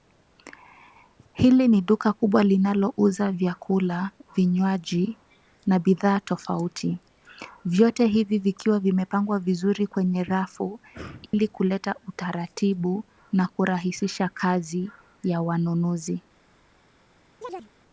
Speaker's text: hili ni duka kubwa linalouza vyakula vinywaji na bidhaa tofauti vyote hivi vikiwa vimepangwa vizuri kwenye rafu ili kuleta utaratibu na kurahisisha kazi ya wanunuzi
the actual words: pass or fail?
pass